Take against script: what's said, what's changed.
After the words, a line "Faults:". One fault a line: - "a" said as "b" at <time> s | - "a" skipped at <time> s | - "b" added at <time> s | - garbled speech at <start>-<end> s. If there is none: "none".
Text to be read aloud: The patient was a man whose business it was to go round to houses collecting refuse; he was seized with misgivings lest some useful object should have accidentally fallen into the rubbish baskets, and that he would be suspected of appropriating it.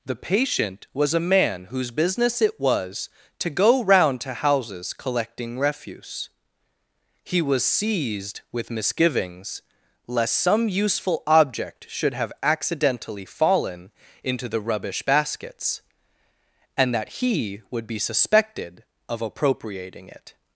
The patient was a man whose business it was to go round to houses collecting refuse; he was seized with misgivings lest some useful object should have accidentally fallen into the rubbish baskets, and that he would be suspected of appropriating it.
Faults:
none